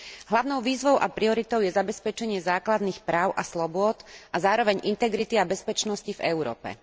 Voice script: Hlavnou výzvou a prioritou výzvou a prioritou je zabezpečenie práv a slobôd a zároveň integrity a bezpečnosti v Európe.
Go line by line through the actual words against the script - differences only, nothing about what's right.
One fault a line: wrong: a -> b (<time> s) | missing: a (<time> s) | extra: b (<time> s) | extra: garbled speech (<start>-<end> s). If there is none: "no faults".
missing: výzvou a prioritou (1.6 s)
extra: základných (2.4 s)